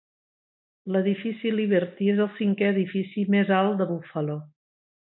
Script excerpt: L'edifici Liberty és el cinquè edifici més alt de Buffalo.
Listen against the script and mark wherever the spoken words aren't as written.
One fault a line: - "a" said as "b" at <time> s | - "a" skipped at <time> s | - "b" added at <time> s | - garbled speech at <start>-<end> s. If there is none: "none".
none